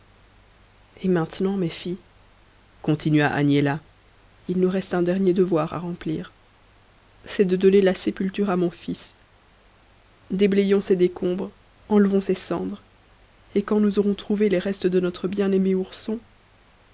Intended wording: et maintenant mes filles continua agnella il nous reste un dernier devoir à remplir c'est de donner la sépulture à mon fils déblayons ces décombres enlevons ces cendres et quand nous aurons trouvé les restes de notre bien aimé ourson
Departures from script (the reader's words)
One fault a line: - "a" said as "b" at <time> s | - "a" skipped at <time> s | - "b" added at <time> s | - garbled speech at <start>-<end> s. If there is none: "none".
none